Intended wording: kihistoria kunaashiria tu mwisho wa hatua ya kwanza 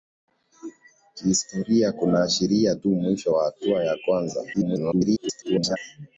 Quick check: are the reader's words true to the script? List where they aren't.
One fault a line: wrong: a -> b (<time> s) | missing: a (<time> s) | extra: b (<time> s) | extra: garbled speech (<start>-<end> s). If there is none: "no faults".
extra: garbled speech (4.5-5.8 s)